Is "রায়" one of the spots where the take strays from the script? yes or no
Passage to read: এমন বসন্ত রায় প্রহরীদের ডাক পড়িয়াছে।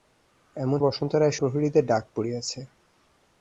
no